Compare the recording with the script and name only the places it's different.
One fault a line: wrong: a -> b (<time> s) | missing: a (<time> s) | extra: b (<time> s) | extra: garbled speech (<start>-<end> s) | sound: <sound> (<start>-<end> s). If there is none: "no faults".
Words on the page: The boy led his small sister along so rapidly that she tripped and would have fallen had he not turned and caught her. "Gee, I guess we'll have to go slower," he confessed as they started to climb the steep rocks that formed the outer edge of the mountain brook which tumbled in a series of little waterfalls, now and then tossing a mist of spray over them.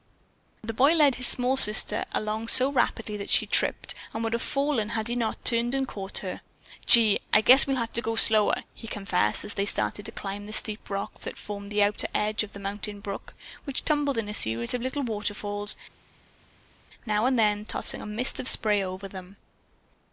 no faults